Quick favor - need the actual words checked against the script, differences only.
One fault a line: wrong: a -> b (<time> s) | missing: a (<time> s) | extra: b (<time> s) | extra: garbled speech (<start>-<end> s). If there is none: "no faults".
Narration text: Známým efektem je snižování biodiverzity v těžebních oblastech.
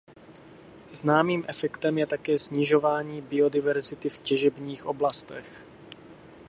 extra: také (2.1 s)